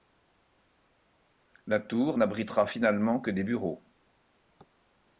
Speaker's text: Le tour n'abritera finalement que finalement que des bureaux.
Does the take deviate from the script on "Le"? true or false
true